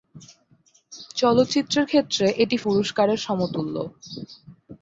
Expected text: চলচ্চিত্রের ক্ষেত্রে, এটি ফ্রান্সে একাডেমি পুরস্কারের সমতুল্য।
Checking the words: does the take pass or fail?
fail